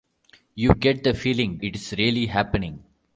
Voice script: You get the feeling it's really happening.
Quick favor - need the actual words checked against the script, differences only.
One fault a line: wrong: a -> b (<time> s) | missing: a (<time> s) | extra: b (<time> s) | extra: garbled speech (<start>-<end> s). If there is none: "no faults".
no faults